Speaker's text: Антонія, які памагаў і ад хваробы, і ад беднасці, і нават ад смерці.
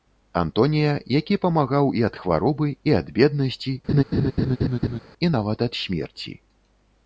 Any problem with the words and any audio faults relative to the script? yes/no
yes